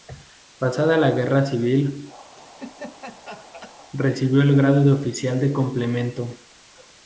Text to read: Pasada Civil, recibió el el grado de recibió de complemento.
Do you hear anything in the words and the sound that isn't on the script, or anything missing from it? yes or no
yes